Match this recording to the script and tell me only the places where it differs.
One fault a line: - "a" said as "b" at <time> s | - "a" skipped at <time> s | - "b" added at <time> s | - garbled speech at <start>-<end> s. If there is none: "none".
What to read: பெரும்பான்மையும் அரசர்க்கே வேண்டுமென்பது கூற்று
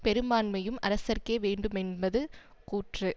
none